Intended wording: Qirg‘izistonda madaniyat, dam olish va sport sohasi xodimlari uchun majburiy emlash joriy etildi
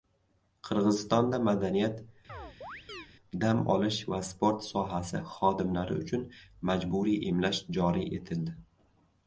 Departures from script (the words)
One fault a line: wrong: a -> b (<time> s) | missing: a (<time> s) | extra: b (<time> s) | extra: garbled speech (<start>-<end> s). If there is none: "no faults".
no faults